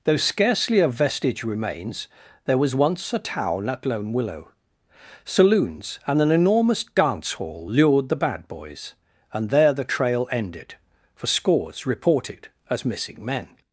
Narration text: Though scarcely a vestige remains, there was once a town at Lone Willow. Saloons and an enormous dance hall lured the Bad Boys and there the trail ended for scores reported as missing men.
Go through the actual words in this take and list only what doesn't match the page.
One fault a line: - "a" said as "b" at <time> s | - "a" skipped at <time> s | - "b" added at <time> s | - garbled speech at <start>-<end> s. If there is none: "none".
none